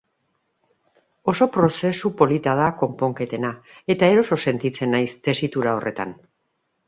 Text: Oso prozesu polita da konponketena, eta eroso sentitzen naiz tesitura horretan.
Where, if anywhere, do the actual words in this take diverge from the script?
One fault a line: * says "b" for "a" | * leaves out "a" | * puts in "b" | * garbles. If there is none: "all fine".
all fine